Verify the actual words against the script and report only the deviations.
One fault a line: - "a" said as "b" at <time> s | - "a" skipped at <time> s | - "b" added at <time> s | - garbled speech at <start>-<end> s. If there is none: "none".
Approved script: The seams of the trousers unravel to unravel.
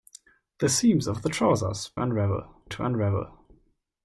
none